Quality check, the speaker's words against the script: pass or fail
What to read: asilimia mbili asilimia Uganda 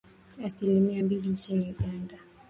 fail